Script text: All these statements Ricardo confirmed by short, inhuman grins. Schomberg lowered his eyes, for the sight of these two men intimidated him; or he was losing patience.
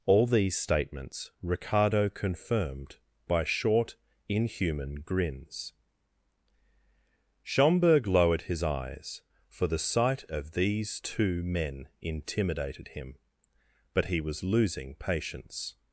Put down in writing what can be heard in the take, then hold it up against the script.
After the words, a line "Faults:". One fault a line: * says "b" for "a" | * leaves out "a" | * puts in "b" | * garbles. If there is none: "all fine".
All these statements Ricardo confirmed by short, inhuman grins. Schomberg lowered his eyes, for the sight of these two men intimidated him; but he was losing patience.
Faults:
* says "but" for "or"